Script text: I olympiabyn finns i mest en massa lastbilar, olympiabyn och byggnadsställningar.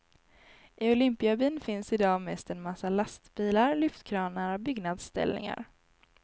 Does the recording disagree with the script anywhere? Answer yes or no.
yes